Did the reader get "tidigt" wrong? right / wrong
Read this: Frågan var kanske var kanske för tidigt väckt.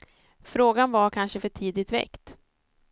right